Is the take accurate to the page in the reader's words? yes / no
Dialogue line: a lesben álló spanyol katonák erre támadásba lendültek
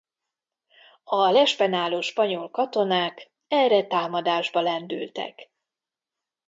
yes